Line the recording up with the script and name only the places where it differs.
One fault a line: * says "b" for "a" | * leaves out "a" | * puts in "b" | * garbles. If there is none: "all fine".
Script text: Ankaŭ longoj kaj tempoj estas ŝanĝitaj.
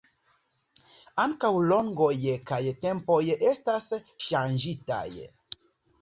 all fine